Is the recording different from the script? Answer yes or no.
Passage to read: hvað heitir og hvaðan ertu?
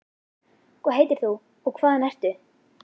yes